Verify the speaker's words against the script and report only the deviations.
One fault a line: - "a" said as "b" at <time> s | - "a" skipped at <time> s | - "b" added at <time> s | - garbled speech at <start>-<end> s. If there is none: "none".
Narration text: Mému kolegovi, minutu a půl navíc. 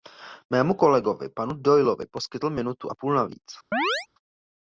- "panu Doyleovi poskytl" added at 1.3 s